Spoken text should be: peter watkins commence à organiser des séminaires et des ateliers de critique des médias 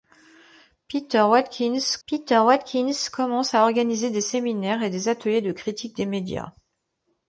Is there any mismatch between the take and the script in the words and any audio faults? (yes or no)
yes